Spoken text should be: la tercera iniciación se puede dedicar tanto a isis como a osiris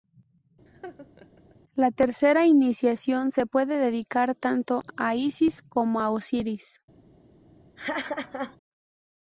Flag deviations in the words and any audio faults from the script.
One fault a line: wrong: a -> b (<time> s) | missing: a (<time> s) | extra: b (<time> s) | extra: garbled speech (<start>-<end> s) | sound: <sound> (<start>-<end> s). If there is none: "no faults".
sound: laugh (0.7-1.6 s)
sound: laugh (7.8-8.6 s)